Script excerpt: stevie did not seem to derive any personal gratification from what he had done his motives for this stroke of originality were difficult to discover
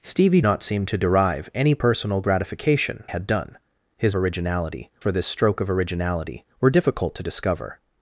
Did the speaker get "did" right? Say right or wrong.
wrong